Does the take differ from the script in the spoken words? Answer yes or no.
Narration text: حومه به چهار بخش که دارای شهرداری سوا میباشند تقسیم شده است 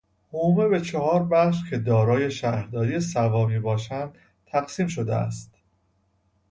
no